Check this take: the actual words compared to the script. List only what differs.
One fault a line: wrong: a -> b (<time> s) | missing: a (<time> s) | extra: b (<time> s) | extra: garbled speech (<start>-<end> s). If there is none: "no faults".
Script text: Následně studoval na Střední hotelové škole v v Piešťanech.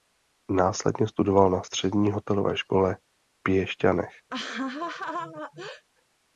missing: v (3.4 s)